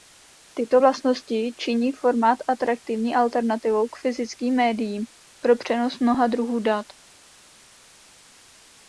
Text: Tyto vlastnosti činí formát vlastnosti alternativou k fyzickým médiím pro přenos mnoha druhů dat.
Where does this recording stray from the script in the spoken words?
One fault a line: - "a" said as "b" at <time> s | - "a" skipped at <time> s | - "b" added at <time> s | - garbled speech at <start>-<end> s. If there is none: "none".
- "vlastnosti" said as "atraktivní" at 2.5 s